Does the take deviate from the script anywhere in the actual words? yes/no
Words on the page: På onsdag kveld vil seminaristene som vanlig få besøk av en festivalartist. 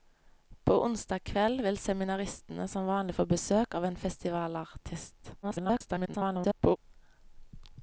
yes